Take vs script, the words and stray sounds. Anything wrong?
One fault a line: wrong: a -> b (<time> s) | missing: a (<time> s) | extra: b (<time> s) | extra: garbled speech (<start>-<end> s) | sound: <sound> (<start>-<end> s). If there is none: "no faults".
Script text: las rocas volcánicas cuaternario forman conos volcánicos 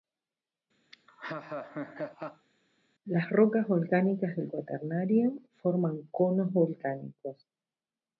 sound: laugh (0.9-2.5 s)
extra: del (4.3 s)